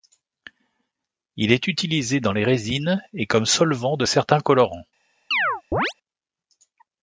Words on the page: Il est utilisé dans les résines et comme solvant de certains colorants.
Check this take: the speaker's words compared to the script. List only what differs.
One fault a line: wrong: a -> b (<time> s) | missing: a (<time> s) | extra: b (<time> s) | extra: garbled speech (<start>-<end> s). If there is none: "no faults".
no faults